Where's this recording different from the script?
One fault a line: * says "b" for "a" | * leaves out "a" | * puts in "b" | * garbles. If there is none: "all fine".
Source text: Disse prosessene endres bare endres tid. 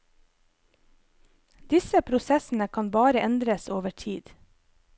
* says "kan" for "endres"
* puts in "over"